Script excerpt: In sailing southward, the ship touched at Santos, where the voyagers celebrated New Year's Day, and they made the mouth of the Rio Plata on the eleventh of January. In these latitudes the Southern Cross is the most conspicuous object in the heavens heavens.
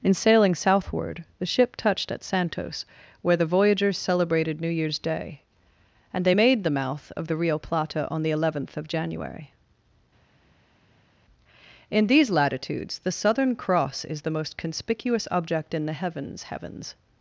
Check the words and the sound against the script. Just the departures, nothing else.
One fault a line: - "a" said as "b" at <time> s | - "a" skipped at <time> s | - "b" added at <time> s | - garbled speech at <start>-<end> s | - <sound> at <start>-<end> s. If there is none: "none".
none